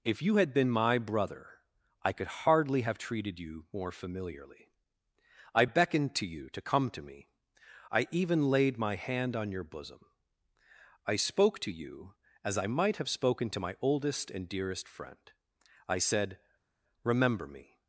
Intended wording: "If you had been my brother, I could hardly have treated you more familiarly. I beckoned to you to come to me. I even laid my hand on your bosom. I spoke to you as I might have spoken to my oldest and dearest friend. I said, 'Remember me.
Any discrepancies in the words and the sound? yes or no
no